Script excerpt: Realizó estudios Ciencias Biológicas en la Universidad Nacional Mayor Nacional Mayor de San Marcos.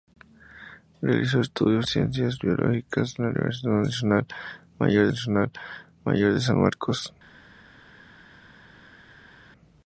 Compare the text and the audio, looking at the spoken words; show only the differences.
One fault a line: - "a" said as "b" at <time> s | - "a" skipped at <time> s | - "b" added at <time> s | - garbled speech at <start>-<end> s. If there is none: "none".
none